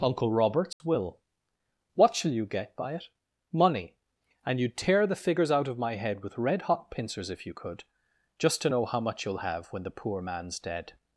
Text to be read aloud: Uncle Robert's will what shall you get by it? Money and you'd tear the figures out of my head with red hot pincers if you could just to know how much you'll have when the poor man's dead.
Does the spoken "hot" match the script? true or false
true